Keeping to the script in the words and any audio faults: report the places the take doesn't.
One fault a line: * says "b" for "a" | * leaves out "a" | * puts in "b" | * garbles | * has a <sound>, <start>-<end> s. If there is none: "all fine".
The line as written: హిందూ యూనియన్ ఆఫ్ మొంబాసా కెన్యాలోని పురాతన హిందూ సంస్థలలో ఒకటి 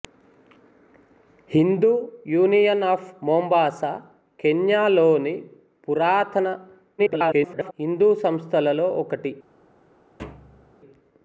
* garbles
* has a thud, 10.2-10.7 s